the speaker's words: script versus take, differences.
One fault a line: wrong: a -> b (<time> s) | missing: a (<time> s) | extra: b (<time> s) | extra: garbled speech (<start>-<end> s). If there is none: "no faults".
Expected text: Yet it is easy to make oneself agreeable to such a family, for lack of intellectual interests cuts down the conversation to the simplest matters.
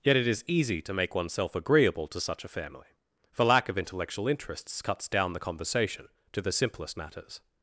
no faults